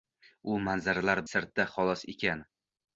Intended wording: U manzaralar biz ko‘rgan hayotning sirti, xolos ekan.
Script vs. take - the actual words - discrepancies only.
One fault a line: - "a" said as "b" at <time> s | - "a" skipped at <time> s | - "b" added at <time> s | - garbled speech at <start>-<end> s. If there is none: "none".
- "biz ko‘rgan hayotning" skipped at 1.2 s